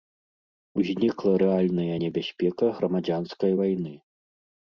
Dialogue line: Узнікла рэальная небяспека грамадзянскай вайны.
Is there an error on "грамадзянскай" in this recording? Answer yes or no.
no